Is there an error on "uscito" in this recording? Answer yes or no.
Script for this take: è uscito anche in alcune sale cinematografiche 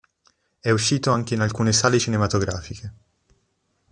no